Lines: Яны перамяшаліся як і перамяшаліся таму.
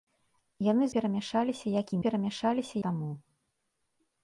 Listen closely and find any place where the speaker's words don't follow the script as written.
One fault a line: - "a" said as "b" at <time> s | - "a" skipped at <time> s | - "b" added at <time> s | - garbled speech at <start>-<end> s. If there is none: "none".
none